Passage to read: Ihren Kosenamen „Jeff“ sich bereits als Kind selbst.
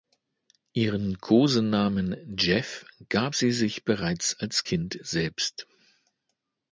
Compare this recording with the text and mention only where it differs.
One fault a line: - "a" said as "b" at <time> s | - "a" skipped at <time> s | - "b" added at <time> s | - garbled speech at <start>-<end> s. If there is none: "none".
- "gab sie" added at 3.1 s